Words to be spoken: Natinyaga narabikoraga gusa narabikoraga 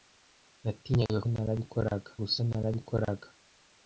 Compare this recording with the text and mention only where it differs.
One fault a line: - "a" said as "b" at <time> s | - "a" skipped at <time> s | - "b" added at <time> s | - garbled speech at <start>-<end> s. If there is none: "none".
none